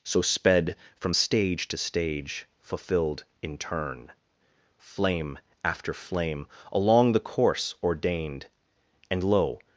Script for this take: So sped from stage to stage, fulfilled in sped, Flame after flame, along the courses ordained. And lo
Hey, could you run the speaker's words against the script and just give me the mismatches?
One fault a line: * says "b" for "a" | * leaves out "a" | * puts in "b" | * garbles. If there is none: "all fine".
* says "turn" for "sped"
* says "course" for "courses"